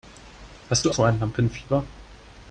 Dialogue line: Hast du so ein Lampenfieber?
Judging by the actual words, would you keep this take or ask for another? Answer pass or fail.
pass